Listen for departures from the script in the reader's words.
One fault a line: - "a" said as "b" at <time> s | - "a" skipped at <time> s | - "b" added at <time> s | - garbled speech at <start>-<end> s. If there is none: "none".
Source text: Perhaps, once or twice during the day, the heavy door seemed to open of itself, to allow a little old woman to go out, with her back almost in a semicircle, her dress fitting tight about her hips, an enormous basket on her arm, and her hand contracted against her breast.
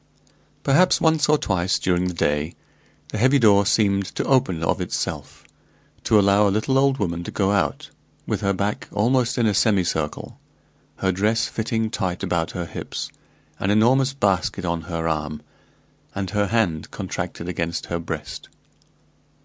none